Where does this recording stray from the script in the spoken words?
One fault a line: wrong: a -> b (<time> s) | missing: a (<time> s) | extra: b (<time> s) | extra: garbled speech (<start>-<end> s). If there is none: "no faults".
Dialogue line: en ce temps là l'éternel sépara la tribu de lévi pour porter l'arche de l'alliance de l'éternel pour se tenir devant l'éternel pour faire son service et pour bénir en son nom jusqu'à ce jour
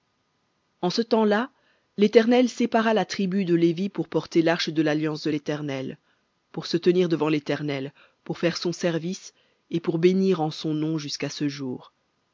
no faults